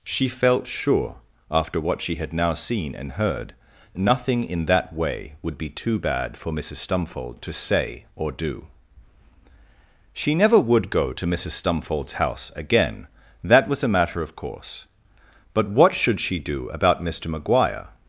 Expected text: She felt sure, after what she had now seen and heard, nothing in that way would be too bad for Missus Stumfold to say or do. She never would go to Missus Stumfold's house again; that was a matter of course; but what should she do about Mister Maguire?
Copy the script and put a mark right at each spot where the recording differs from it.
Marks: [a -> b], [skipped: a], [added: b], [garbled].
She felt sure, after what she had now seen and heard, nothing in that way would be too bad for Missus Stumfold to say or do. She never would go to Missus Stumfold's house again; that was a matter of course; but what should she do about Mister Maguire?